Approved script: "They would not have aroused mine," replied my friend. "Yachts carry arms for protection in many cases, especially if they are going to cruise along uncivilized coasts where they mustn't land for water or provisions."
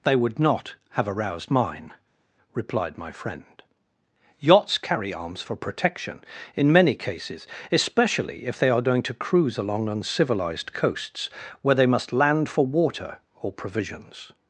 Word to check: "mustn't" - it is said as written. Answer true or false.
false